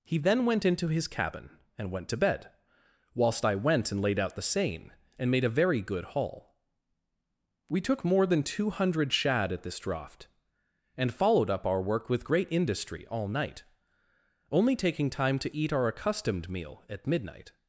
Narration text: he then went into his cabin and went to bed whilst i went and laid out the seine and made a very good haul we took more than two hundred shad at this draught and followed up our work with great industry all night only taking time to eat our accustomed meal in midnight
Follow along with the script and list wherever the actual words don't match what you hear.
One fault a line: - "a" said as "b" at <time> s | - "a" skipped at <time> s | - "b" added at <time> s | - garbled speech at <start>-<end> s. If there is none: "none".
- "in" said as "at" at 16.9 s